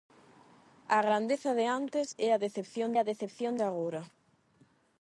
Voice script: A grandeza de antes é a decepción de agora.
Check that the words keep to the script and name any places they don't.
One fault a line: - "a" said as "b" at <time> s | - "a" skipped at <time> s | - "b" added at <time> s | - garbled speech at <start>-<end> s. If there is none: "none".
- "a decepción" added at 3.0 s